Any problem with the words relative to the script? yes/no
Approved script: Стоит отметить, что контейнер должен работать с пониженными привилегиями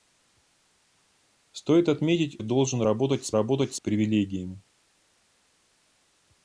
yes